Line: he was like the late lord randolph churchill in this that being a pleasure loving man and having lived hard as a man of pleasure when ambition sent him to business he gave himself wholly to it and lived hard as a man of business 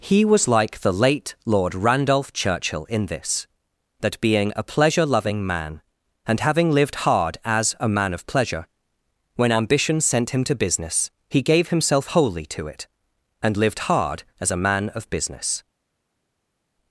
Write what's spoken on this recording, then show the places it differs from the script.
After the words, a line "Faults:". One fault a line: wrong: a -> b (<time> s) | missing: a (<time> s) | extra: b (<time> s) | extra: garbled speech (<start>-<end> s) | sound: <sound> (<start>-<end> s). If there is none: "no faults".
he was like the late lord randolph churchill in this that being a pleasure loving man and having lived hard as a man of pleasure when ambition sent him to business he gave himself wholly to it and lived hard as a man of business
Faults:
no faults